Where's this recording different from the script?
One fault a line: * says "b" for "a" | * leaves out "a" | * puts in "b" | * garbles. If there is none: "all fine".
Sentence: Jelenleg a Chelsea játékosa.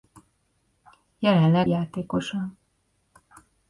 * leaves out "a Chelsea"